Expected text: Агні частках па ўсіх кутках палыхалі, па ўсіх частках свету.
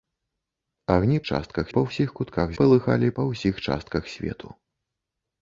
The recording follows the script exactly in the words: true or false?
true